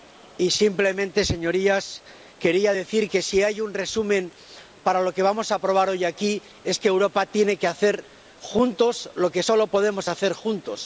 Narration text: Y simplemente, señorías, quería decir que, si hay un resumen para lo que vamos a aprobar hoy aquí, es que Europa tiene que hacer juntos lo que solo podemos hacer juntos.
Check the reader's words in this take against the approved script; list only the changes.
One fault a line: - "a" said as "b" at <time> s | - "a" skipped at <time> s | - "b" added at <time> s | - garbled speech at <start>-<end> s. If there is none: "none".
none